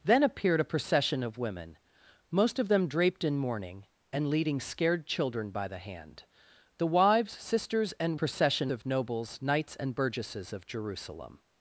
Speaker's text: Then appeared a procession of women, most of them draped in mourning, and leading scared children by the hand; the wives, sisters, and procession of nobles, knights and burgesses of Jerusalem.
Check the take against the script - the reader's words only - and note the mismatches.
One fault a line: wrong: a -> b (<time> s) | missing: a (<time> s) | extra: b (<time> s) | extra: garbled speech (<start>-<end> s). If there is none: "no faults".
no faults